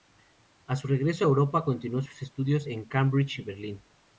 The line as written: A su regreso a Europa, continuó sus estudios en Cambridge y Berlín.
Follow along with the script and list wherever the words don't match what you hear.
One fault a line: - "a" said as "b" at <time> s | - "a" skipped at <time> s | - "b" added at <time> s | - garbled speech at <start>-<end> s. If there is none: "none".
none